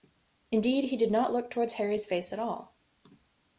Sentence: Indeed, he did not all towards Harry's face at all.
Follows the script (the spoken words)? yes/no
no